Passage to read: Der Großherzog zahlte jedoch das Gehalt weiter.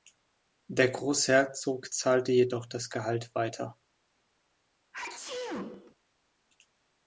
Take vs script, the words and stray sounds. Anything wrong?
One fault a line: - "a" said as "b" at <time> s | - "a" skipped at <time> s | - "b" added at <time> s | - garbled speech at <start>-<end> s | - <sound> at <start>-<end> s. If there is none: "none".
- sneeze at 4.9-6.0 s